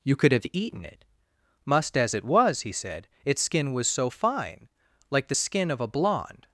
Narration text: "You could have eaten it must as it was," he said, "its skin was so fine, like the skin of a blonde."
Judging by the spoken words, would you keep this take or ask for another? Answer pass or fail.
pass